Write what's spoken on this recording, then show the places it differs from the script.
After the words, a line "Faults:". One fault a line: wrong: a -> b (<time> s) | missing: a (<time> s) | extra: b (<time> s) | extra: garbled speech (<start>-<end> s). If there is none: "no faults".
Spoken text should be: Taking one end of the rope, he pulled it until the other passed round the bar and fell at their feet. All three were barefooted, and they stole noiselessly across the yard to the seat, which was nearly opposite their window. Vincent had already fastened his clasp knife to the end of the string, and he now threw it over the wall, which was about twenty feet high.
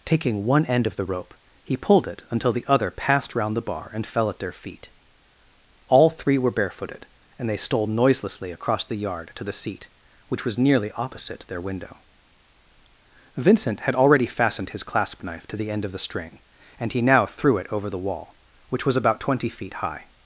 Taking one end of the rope, he pulled it until the other passed round the bar and fell at their feet. All three were barefooted, and they stole noiselessly across the yard to the seat, which was nearly opposite their window. Vincent had already fastened his clasp knife to the end of the string, and he now threw it over the wall, which was about twenty feet high.
Faults:
no faults